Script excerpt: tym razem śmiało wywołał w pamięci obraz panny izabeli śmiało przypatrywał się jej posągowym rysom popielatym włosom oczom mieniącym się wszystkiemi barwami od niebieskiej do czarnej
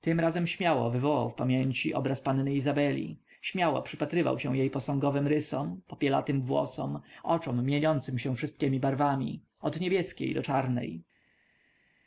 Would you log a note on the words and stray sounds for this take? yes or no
no